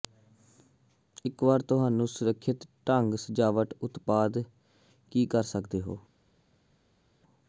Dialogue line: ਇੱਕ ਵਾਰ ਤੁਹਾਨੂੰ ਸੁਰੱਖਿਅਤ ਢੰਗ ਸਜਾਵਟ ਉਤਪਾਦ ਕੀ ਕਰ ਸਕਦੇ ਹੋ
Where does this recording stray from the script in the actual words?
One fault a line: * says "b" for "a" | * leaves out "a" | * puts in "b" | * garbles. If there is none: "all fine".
all fine